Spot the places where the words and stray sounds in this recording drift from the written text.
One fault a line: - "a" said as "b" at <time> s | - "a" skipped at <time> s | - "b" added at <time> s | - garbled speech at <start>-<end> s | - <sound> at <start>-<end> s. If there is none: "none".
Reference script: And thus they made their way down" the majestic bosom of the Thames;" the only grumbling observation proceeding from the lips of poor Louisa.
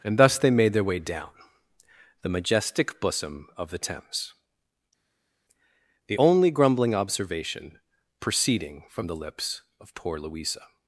none